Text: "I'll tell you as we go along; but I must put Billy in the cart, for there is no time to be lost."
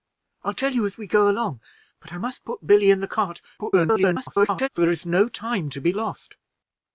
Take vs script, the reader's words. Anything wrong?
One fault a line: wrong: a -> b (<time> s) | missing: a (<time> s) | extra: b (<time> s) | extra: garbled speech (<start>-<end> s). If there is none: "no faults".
extra: garbled speech (3.6-4.7 s)